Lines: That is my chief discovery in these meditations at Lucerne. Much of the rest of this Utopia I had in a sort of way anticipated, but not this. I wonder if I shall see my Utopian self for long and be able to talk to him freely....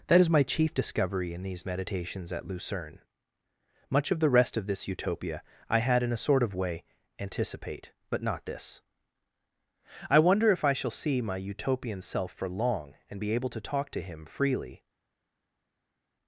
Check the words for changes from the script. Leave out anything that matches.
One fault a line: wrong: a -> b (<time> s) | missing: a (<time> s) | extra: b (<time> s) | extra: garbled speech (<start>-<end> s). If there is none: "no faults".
wrong: anticipated -> anticipate (7.2 s)